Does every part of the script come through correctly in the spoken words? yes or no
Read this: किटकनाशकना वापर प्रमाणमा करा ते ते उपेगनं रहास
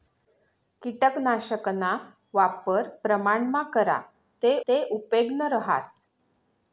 yes